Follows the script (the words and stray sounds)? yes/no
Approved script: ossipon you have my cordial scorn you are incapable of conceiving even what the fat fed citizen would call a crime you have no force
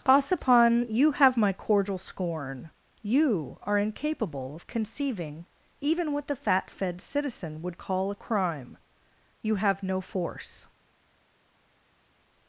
yes